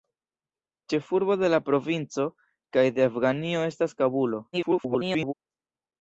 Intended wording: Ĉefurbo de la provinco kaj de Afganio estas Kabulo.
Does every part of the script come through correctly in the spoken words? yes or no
no